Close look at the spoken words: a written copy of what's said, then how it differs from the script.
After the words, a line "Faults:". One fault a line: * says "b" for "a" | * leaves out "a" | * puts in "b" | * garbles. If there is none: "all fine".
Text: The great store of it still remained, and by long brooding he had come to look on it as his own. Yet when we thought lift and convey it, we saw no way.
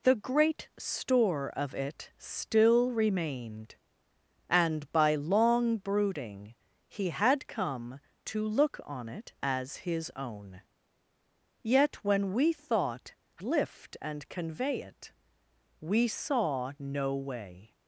The great store of it still remained, and by long brooding he had come to look on it as his own. Yet when we thought lift and convey it, we saw no way.
Faults:
all fine